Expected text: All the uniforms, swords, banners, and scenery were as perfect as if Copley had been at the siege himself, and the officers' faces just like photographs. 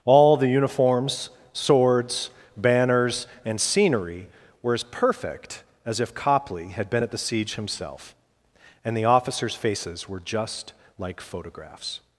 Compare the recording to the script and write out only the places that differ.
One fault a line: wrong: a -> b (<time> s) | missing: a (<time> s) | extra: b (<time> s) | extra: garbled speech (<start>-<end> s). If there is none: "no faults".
extra: were (10.1 s)